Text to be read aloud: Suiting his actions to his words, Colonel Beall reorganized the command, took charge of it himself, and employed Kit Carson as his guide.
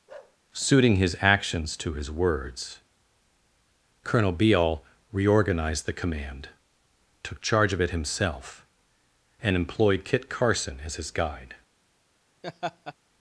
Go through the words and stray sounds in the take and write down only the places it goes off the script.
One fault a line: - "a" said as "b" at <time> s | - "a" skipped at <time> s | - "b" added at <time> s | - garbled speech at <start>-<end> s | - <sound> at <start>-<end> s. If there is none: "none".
- bark at 0.1-0.4 s
- laugh at 12.4-12.9 s